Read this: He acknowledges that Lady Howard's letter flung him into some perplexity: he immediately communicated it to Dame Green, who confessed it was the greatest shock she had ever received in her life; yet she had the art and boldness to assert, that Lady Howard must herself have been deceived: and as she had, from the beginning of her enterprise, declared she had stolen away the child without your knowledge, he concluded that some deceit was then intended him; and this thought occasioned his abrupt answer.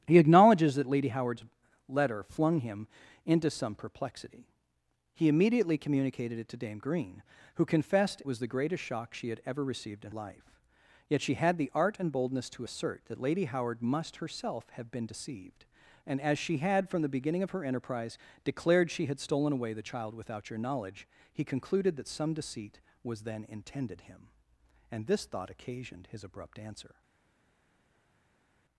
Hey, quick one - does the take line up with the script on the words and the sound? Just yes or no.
no